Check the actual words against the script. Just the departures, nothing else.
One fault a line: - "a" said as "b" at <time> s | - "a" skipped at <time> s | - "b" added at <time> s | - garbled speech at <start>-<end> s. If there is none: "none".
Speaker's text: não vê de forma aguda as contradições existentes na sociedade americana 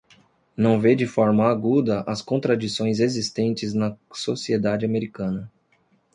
none